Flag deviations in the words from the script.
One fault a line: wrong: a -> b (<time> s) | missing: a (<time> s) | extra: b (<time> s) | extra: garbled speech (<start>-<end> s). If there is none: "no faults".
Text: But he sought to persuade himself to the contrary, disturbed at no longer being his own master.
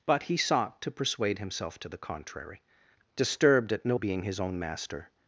missing: longer (4.0 s)